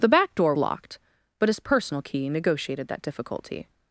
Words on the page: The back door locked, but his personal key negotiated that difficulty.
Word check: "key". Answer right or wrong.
right